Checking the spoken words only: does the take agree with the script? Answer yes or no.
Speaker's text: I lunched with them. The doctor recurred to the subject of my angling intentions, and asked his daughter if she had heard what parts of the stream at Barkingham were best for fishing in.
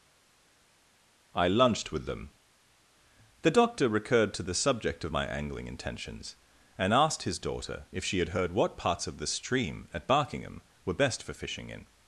yes